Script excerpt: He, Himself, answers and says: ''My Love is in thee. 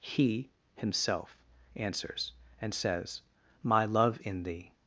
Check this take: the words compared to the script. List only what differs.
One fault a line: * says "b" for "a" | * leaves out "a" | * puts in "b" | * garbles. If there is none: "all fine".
* leaves out "is"